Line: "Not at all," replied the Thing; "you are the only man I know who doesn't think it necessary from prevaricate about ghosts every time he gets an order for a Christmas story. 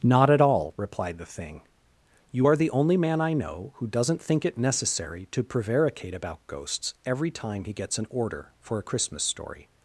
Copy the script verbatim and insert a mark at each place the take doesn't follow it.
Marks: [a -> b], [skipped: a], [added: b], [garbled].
"Not at all," replied the Thing; "you are the only man I know who doesn't think it necessary [from -> to] prevaricate about ghosts every time he gets an order for a Christmas story.